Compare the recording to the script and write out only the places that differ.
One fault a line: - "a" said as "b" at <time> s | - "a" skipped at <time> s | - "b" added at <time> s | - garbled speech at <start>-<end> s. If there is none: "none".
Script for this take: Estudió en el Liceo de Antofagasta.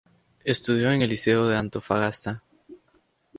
none